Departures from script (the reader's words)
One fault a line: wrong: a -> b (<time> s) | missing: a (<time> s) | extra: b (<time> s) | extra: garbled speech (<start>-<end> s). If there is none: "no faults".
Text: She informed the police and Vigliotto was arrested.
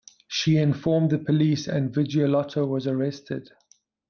no faults